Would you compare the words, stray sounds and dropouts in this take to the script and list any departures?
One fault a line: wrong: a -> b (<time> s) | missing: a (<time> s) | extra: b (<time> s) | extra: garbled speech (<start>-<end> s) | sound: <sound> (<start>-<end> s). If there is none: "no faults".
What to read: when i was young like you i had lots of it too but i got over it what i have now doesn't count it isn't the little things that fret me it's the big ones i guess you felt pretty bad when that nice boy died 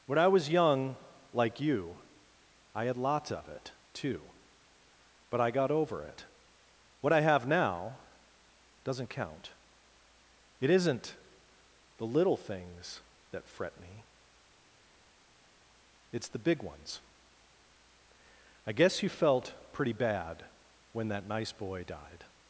no faults